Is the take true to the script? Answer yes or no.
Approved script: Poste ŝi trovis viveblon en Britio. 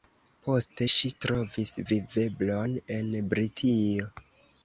yes